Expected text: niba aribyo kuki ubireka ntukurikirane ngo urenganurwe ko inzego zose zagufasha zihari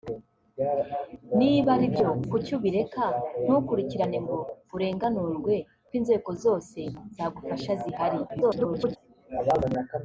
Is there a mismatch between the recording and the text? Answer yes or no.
yes